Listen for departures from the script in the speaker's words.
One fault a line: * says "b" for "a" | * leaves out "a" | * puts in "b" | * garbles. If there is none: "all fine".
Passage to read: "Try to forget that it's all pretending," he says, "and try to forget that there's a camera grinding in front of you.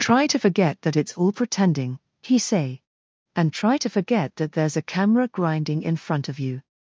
* says "say" for "says"